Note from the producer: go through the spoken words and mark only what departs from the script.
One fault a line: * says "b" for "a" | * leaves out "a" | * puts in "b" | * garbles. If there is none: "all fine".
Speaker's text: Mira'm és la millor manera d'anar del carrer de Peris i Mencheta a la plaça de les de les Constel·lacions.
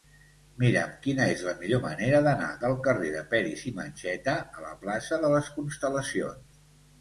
* puts in "quina"
* leaves out "de les"